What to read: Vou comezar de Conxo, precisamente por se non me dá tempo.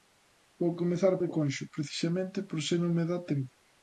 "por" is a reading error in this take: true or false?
false